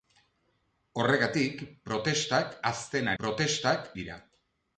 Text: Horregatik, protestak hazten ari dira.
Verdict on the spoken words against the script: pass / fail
fail